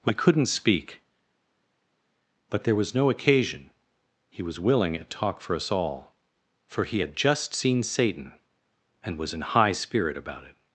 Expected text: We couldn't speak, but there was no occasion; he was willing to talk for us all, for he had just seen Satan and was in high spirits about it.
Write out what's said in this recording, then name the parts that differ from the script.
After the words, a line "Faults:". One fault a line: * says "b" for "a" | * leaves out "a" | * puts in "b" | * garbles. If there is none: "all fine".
We couldn't speak, but there was no occasion; he was willing at talk for us all, for he had just seen Satan and was in high spirit about it.
Faults:
* says "at" for "to"
* says "spirit" for "spirits"